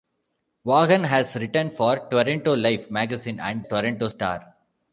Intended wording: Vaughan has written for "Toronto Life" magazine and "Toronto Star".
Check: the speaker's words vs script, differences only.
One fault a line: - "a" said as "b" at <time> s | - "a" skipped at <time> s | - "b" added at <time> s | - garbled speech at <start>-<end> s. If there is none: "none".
none